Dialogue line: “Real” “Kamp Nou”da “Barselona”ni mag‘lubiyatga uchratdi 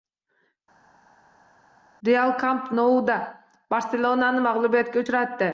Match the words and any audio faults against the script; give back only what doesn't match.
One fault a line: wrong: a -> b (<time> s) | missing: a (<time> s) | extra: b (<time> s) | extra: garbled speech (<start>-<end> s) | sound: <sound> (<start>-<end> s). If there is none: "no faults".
no faults